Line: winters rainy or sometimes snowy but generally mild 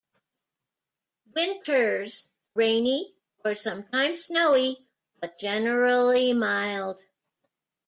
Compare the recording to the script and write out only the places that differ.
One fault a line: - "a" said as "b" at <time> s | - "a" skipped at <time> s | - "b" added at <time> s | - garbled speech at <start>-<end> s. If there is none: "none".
none